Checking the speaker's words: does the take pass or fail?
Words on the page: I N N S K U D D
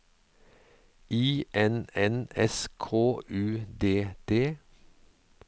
pass